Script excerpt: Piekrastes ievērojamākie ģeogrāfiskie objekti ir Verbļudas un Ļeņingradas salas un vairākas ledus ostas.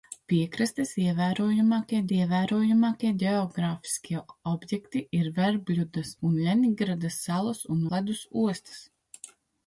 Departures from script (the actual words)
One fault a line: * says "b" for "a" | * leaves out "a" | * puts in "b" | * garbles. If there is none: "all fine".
* puts in "ievērojamākie"
* leaves out "vairākas"